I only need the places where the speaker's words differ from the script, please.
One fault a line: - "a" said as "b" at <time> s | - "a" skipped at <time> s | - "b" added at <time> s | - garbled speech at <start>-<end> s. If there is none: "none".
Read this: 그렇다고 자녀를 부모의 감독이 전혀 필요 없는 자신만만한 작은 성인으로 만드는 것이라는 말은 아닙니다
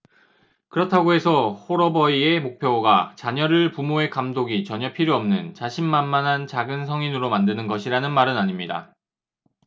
- "해서 홀어버이의 목표가" added at 1.1 s